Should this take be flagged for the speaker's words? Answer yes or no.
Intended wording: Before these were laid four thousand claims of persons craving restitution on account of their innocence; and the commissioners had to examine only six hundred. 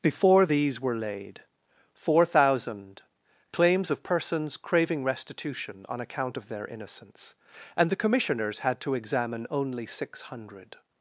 no